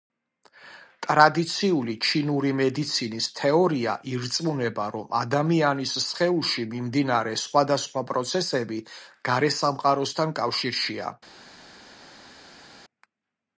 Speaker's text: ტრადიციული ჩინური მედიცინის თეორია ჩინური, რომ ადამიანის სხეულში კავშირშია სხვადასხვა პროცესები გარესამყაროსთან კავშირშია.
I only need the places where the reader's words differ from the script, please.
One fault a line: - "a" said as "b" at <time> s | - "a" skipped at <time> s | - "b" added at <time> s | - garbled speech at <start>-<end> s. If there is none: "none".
- "ჩინური" said as "ირწმუნება" at 4.1 s
- "კავშირშია" said as "მიმდინარე" at 6.7 s